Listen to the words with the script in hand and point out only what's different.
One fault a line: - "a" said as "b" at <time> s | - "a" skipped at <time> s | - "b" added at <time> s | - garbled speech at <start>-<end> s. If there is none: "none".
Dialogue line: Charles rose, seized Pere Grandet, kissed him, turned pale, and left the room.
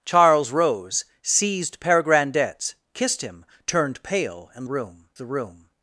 - "left" said as "room" at 4.6 s